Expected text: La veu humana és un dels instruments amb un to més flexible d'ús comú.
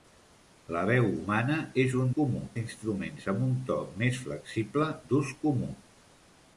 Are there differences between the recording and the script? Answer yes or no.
yes